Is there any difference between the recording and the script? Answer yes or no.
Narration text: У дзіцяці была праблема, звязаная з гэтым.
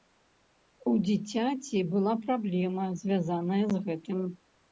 no